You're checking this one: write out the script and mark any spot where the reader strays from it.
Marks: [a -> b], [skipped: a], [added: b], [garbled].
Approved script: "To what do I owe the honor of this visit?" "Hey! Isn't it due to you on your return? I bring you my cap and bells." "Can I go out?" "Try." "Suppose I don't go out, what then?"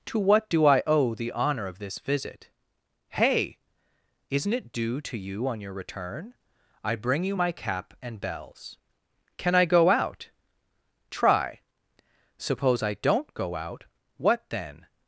"To what do I owe the honor of this visit?" "Hey! Isn't it due to you on your return? I bring you my cap and bells." "Can I go out?" "Try." "Suppose I don't go out, what then?"